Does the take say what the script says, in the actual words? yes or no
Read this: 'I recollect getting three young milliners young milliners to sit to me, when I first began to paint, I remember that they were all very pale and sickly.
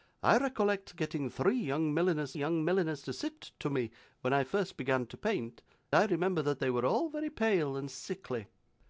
yes